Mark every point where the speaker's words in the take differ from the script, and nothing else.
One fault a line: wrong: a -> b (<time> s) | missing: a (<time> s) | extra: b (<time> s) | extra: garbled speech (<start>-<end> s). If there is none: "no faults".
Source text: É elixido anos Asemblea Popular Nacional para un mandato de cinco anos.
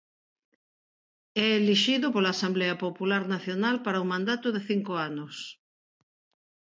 wrong: anos -> pola (2.1 s)